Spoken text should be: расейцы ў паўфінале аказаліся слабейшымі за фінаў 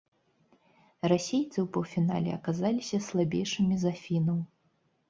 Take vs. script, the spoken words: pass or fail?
pass